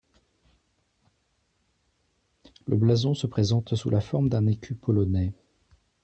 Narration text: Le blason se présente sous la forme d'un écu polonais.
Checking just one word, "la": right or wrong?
right